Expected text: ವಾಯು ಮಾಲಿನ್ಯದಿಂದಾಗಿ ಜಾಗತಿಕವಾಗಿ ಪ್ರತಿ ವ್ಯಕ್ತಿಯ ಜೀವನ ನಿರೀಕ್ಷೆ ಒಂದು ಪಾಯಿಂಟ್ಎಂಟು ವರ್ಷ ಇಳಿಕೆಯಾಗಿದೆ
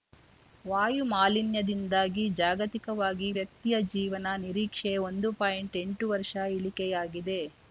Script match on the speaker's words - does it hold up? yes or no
no